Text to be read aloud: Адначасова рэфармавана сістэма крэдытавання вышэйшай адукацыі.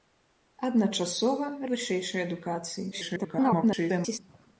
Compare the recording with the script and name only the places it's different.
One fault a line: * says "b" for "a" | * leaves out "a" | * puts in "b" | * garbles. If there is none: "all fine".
* leaves out "рэфармавана сістэма крэдытавання"
* garbles